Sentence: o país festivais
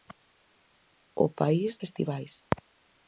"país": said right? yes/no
yes